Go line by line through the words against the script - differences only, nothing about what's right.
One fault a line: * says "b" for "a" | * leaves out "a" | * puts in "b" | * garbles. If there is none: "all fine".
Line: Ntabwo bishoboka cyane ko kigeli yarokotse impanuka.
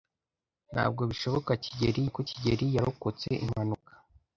* says "kigeli" for "cyane"